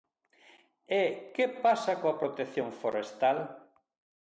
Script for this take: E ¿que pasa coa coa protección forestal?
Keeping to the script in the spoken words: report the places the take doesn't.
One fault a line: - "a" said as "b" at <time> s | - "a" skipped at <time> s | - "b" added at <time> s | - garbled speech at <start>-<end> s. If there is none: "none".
- "coa" skipped at 2.2 s